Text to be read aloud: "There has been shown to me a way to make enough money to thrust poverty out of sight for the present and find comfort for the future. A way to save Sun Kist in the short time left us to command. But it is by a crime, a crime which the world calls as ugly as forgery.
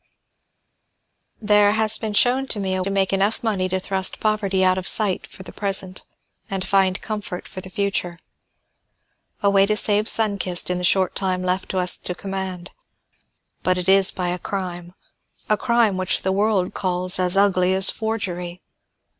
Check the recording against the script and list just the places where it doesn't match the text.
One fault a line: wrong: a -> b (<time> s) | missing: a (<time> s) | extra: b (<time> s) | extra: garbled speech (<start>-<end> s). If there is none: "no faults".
missing: way (2.8 s)